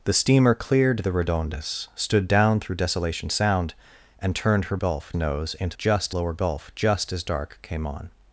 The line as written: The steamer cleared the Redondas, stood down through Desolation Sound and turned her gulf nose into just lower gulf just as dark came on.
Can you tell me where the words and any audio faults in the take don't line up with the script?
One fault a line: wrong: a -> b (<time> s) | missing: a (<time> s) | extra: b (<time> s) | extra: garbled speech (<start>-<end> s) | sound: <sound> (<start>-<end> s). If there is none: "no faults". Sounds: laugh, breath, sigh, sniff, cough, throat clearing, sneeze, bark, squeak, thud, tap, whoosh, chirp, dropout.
no faults